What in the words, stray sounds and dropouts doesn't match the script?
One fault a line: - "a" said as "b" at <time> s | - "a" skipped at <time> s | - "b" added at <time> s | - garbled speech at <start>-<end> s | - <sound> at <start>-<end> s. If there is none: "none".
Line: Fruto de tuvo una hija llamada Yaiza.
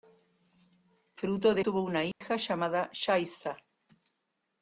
- dropout at 2.1-2.2 s